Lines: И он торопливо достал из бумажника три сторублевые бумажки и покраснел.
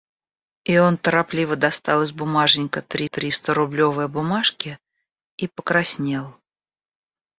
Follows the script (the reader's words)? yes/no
no